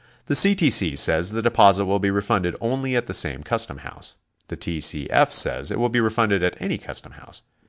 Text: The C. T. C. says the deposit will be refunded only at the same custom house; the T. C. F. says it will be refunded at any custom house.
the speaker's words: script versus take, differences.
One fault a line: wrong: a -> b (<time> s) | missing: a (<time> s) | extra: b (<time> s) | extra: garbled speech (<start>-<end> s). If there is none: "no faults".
no faults